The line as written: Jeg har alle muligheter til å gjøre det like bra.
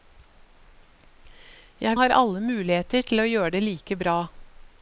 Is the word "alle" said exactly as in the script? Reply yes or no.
yes